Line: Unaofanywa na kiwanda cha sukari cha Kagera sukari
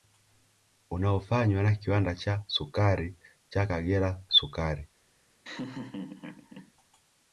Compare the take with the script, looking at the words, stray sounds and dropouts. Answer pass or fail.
fail